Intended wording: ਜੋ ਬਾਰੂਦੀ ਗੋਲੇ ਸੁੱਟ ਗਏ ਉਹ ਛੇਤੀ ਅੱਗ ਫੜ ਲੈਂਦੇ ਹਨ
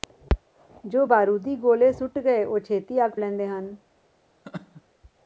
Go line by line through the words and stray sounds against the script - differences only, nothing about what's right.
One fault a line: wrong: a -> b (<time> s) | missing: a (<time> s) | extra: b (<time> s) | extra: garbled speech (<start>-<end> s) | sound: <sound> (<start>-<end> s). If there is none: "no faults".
missing: ਫੜ (3.1 s)
sound: laugh (4.4-4.8 s)